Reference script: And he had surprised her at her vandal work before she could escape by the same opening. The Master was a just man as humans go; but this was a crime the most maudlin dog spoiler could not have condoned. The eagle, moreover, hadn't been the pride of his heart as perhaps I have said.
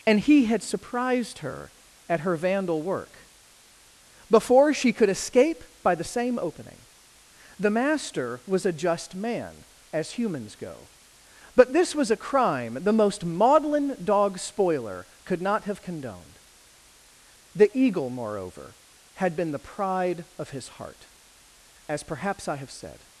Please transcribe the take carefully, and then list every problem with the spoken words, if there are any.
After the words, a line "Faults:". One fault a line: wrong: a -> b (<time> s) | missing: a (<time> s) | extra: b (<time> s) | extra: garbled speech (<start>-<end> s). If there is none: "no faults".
And he had surprised her at her vandal work before she could escape by the same opening. The Master was a just man as humans go; but this was a crime the most maudlin dog spoiler could not have condoned. The eagle, moreover, had been the pride of his heart as perhaps I have said.
Faults:
wrong: hadn't -> had (19.1 s)